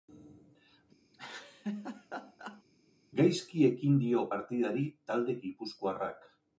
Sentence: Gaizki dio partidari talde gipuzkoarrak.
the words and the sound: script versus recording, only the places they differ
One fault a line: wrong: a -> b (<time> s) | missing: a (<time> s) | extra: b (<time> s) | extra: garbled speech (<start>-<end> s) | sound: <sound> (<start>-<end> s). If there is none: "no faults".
sound: laugh (1.1-2.6 s)
extra: ekin (3.7 s)